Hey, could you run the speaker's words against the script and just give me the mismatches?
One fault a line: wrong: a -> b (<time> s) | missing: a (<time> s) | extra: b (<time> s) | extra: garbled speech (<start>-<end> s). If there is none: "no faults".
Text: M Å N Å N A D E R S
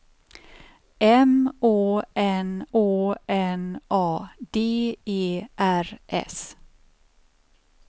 no faults